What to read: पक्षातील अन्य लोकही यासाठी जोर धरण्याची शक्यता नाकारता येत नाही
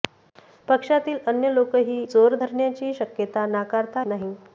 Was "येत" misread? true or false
true